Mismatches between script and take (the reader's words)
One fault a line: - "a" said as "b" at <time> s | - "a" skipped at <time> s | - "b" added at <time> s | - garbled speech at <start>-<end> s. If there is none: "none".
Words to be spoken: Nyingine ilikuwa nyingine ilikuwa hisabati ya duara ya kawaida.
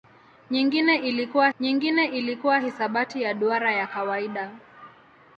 none